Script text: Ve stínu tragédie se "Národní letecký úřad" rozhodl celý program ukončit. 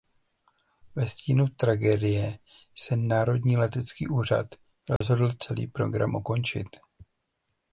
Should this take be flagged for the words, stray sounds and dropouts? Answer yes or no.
yes